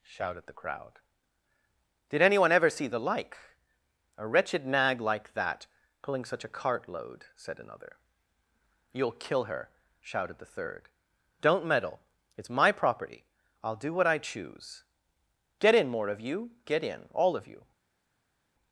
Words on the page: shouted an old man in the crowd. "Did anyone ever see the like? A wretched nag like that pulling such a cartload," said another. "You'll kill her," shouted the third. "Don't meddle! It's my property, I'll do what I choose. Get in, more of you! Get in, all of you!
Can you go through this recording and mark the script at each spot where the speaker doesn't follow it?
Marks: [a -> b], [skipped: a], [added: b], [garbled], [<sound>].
shouted [skipped: an old man in] the crowd. "Did anyone ever see the like? A wretched nag like that pulling such a cartload," said another. "You'll kill her," shouted the third. "Don't meddle! It's my property, I'll do what I choose. Get in, more of you! Get in, all of you!